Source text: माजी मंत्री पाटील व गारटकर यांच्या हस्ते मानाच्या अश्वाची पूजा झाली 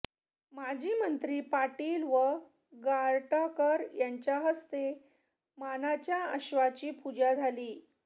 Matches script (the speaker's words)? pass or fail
pass